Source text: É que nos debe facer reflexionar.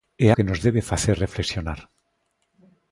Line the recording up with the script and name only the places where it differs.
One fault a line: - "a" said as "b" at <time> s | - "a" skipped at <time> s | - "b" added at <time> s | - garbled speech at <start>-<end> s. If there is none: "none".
none